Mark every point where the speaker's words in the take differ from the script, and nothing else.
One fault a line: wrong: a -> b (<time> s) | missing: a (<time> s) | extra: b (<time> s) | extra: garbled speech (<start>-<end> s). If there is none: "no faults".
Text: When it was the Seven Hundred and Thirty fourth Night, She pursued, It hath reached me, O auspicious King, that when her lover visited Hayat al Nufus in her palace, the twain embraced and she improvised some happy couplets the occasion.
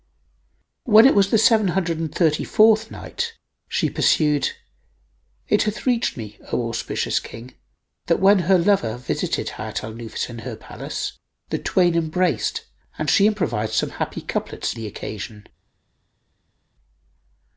no faults